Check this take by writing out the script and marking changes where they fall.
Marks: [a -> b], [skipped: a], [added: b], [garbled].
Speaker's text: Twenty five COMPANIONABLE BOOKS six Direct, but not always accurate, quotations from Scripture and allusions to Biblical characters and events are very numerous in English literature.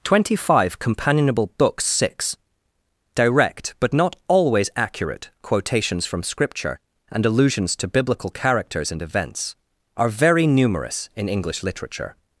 Twenty five COMPANIONABLE BOOKS six Direct, but not always accurate, quotations from Scripture and allusions to Biblical characters and events are very numerous in English literature.